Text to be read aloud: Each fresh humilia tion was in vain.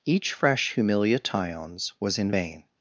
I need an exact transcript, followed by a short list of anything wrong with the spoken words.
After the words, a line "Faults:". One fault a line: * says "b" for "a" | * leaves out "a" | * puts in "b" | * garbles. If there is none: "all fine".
Each fresh humilia tions was in vain.
Faults:
* says "tions" for "tion"